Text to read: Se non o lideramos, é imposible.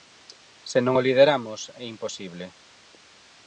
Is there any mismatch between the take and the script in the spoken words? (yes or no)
no